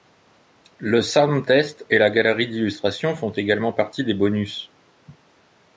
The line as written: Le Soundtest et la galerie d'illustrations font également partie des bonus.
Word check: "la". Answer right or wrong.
right